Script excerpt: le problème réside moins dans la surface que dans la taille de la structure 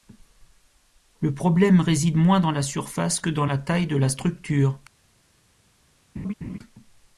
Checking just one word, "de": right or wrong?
right